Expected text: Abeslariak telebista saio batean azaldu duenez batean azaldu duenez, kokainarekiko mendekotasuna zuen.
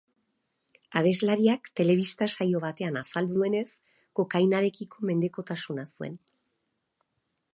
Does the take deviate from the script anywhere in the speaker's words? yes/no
yes